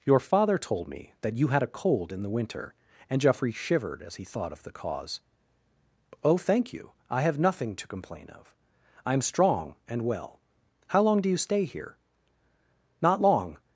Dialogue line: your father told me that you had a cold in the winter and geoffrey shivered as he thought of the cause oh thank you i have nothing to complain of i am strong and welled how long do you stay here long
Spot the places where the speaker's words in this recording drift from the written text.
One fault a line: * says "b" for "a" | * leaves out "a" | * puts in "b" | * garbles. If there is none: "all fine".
* says "well" for "welled"
* puts in "not"